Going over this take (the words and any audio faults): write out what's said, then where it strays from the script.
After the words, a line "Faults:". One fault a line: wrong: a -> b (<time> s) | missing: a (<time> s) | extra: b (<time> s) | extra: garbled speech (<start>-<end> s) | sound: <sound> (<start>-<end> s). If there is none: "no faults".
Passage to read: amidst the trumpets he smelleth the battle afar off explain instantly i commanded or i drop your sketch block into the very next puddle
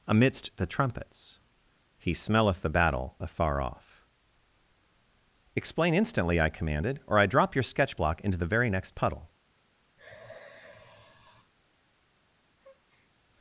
amidst the trumpets he smelleth the battle afar off explain instantly i commanded or i drop your sketch block into the very next puddle
Faults:
sound: sigh (10.0-11.5 s)
sound: breath (12.6-13.1 s)